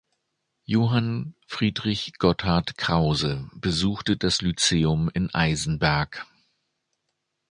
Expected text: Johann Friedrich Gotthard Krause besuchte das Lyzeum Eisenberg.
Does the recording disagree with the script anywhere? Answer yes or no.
yes